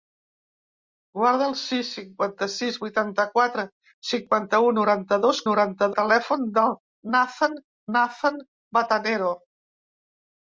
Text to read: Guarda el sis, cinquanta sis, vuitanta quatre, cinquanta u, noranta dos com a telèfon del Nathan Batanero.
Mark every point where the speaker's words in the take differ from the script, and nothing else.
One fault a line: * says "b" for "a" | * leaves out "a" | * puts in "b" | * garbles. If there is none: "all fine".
* says "noranta" for "com"
* puts in "Nathan"